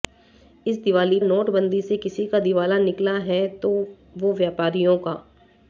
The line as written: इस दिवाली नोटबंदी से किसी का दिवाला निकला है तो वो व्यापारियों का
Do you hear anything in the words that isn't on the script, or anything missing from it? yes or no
no